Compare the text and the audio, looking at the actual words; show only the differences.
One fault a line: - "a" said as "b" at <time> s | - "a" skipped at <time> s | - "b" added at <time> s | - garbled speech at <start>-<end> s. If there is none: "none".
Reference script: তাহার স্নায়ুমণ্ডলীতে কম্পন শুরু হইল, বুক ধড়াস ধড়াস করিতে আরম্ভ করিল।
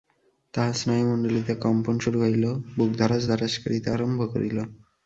none